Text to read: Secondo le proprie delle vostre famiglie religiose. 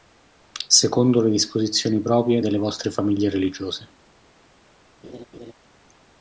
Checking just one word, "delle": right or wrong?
right